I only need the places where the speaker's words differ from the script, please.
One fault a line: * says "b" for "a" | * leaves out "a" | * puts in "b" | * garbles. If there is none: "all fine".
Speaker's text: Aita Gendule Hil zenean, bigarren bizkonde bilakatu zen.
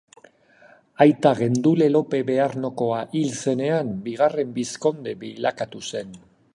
* puts in "Lope Bearnokoa"